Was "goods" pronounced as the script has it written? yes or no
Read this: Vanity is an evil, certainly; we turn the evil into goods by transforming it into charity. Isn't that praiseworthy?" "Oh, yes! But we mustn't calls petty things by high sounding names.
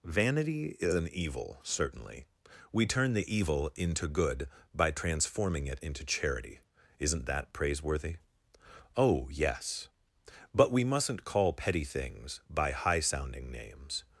no